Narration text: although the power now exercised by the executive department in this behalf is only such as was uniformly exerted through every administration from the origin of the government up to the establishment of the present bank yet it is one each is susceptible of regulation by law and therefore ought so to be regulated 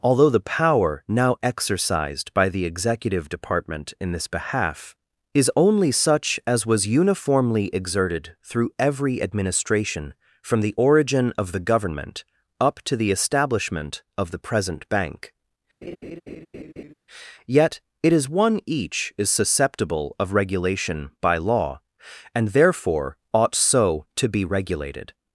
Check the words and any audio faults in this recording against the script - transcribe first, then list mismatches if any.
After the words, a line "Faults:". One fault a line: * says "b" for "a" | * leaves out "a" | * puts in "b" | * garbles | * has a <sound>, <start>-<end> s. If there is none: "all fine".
although the power now exercised by the executive department in this behalf is only such as was uniformly exerted through every administration from the origin of the government up to the establishment of the present bank yet it is one each is susceptible of regulation by law and therefore ought so to be regulated
Faults:
* has a laugh, 15.8-16.9 s